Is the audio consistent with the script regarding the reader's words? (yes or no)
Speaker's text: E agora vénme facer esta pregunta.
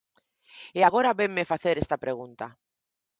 yes